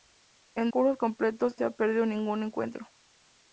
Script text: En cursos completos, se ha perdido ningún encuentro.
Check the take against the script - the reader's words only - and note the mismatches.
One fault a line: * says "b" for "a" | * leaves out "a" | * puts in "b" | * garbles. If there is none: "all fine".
all fine